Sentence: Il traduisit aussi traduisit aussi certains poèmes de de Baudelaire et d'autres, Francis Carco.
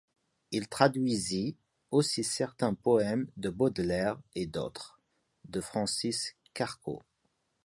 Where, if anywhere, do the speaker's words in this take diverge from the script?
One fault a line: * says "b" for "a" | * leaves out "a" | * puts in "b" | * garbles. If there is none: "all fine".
* leaves out "traduisit aussi"
* leaves out "de"
* puts in "de"